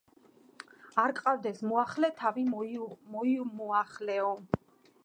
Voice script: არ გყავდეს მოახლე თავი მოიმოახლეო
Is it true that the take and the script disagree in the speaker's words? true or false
false